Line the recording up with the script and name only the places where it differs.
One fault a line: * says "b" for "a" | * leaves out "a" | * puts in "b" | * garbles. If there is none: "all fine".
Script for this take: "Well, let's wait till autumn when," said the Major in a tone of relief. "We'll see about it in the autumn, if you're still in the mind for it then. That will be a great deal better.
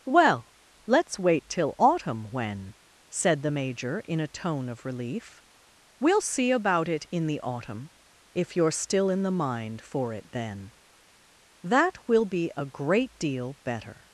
all fine